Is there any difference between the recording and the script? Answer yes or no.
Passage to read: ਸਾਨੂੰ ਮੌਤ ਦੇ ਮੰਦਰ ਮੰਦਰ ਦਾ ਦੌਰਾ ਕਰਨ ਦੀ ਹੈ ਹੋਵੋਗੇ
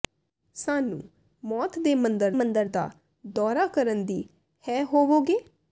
no